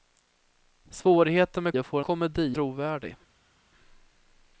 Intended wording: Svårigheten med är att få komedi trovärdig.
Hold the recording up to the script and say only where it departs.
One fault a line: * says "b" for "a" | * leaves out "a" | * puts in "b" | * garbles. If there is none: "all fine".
all fine